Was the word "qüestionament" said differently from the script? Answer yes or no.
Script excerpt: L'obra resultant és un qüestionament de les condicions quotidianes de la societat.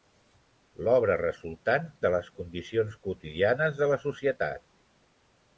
yes